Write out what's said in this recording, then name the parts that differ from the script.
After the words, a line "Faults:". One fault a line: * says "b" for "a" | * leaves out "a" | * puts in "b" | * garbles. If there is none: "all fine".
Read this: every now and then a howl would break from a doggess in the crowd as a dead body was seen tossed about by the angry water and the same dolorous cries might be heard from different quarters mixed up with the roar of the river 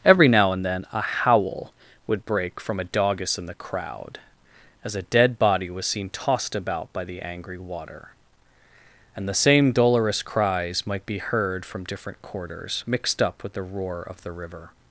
every now and then a howl would break from a doggess in the crowd as a dead body was seen tossed about by the angry water and the same dolorous cries might be heard from different quarters mixed up with the roar of the river
Faults:
all fine